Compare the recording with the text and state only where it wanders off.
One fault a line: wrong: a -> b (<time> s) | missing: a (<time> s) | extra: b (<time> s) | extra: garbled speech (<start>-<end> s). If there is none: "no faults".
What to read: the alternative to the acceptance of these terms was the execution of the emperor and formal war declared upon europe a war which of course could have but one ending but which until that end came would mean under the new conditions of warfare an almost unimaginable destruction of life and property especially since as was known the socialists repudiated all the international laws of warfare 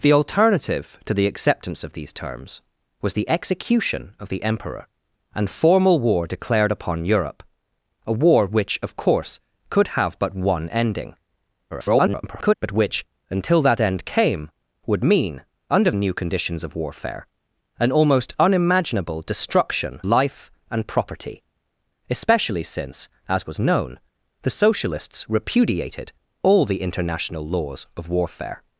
extra: garbled speech (11.7-12.5 s)
missing: the (15.9 s)
missing: of (20.0 s)